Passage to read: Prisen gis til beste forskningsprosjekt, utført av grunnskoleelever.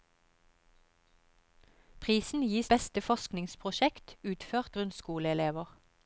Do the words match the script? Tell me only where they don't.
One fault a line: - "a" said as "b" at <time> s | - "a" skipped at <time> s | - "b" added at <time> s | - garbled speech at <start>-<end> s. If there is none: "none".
- "til" skipped at 2.7 s
- "av" skipped at 4.8 s